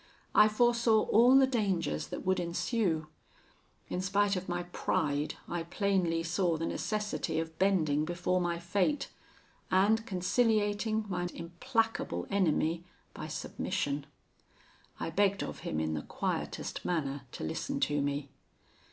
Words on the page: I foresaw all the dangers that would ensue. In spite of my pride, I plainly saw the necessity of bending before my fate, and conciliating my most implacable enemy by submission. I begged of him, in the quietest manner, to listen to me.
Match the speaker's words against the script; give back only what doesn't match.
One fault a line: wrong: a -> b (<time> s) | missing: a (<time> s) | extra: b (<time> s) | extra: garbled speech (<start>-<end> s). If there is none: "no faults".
missing: most (11.2 s)